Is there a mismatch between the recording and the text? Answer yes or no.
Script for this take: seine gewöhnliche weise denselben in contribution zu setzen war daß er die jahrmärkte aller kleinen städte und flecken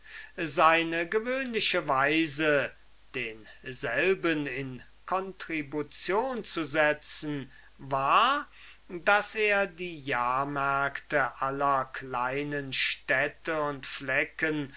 no